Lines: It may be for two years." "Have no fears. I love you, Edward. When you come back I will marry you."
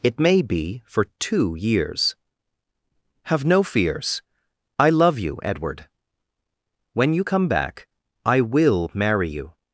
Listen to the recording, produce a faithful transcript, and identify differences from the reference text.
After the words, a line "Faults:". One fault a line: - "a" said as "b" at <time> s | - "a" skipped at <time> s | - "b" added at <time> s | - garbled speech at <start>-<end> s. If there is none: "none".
It may be for two years." "Have no fears. I love you, Edward. When you come back I will marry you."
Faults:
none